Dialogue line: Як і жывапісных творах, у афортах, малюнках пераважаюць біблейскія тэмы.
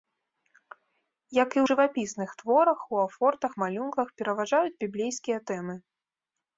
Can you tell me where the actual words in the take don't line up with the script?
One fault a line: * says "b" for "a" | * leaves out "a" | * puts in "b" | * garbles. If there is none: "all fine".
all fine